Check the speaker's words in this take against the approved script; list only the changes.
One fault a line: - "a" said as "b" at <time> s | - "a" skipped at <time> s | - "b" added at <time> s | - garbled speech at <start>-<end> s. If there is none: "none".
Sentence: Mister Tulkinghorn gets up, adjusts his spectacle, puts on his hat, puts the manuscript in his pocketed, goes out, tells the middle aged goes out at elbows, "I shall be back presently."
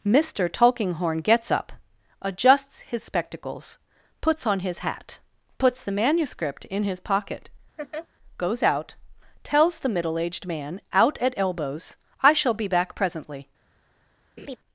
- "spectacle" said as "spectacles" at 3.0 s
- "pocketed" said as "pocket" at 7.0 s
- "goes" said as "man" at 10.5 s